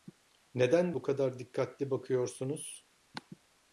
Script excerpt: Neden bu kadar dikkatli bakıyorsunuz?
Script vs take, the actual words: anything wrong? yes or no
no